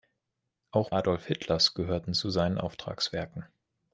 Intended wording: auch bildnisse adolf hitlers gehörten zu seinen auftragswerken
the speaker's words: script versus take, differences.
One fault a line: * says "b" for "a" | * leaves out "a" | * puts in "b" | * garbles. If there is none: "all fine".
* leaves out "bildnisse"